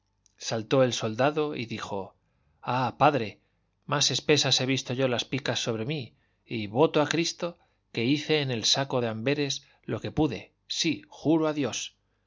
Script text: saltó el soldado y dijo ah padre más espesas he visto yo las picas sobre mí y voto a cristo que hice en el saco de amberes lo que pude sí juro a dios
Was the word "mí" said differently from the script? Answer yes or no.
no